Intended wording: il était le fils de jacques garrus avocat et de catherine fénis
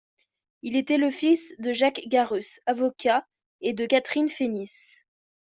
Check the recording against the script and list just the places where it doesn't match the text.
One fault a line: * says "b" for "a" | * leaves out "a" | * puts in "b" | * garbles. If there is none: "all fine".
all fine